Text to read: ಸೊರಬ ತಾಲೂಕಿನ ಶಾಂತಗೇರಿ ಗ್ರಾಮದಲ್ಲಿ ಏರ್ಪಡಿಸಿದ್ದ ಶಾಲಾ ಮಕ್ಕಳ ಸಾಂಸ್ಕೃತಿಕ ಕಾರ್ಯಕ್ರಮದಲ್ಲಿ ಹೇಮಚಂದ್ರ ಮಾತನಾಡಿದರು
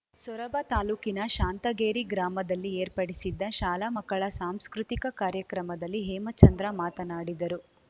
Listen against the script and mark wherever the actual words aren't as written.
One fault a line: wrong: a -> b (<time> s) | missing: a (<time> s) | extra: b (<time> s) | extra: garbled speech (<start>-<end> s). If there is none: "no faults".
no faults